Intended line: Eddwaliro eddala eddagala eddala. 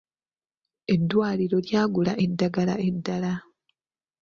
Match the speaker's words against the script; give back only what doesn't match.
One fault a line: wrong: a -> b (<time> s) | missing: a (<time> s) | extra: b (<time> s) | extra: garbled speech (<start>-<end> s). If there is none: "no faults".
wrong: eddala -> lyagula (1.7 s)